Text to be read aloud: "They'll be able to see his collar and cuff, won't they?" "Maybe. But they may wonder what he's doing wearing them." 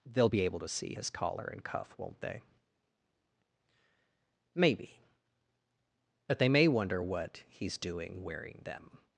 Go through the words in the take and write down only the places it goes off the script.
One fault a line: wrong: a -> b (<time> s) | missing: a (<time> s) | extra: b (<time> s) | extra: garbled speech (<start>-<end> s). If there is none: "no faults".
no faults